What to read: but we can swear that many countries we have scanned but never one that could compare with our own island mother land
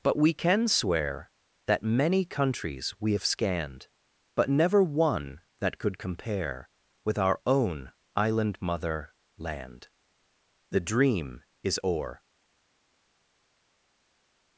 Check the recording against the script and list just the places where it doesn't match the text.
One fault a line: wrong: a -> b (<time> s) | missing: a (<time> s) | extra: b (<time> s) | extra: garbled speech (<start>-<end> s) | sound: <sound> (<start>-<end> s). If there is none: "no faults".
extra: the dream is o'er (10.7 s)